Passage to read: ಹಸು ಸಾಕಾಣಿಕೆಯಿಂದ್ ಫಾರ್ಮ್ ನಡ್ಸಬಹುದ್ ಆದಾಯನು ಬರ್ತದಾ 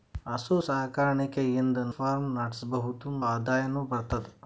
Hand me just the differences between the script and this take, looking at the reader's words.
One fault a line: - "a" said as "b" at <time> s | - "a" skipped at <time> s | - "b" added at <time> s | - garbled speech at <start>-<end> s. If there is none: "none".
none